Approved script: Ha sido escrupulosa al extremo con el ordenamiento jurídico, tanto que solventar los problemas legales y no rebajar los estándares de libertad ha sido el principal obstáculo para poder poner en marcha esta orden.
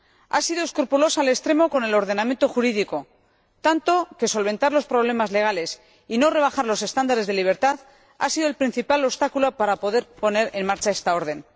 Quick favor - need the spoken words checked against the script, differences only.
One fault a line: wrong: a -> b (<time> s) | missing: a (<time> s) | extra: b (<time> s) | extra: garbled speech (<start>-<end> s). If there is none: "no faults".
no faults